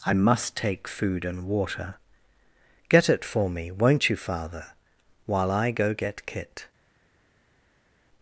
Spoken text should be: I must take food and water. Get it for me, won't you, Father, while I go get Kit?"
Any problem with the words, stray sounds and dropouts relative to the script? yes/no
no